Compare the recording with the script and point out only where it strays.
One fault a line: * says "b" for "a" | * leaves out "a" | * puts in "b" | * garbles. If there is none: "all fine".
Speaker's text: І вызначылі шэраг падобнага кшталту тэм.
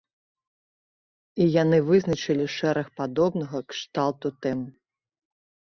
* puts in "яны"